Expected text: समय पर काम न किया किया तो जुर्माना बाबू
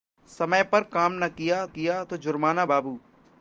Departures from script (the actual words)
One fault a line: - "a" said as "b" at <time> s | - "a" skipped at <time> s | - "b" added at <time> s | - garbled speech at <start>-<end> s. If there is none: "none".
none